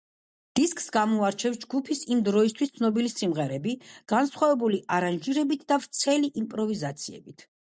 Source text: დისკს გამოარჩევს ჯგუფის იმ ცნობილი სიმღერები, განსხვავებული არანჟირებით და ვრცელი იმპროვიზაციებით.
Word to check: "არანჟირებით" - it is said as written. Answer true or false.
true